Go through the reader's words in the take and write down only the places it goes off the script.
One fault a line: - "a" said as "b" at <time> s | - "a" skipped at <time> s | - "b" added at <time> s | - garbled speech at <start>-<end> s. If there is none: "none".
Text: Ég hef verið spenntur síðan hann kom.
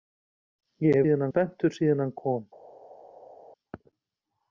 - "verið" said as "síðan" at 1.0 s